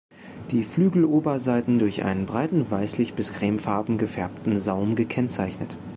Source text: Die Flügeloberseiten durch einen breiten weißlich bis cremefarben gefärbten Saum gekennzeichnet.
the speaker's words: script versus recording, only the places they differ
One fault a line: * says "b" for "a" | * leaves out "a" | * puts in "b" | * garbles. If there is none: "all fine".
all fine